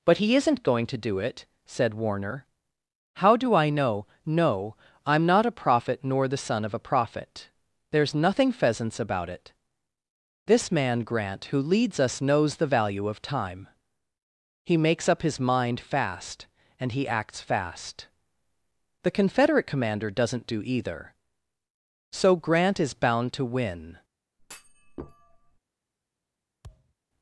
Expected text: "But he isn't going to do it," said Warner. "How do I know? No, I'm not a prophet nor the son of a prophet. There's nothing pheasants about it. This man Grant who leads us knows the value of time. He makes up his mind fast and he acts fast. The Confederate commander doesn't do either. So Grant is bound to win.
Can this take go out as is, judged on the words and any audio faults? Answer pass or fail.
fail